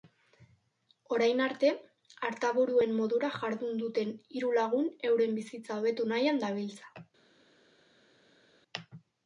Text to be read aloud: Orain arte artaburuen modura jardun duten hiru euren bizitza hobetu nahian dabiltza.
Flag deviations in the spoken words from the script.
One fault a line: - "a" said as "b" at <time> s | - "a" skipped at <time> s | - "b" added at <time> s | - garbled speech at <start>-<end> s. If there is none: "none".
- "lagun" added at 4.6 s